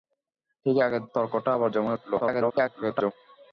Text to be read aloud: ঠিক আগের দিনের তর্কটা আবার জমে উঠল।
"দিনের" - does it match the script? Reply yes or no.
no